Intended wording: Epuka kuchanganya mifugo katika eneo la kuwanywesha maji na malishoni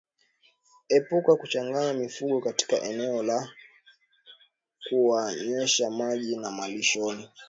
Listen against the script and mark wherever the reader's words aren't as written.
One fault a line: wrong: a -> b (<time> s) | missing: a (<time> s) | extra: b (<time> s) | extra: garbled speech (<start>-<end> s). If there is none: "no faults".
no faults